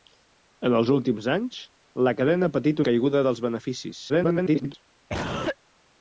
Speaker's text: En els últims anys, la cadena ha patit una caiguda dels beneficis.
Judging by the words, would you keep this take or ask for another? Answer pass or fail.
fail